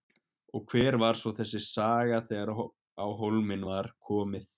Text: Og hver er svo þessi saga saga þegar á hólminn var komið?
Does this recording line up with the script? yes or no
no